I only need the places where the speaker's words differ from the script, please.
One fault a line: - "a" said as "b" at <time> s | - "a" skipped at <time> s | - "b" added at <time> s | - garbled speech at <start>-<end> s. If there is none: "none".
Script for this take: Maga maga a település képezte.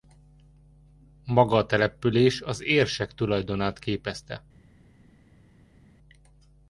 - "maga" skipped at 1.6 s
- "az érsek tulajdonát" added at 2.4 s